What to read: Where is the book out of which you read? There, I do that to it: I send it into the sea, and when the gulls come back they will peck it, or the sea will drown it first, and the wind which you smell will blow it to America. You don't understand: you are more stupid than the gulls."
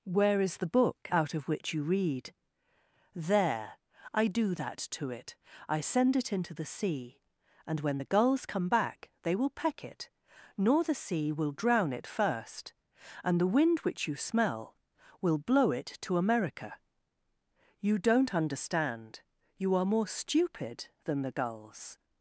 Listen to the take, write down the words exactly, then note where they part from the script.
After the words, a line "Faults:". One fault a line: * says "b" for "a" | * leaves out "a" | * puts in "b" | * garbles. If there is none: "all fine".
Where is the book out of which you read? There, I do that to it: I send it into the sea, and when the gulls come back they will peck it, nor the sea will drown it first, and the wind which you smell will blow it to America. You don't understand: you are more stupid than the gulls."
Faults:
* says "nor" for "or"